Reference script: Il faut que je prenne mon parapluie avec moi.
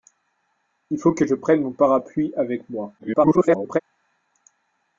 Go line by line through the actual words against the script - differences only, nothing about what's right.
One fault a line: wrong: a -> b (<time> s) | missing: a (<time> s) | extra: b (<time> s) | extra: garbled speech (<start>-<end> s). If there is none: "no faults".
extra: garbled speech (3.0-3.8 s)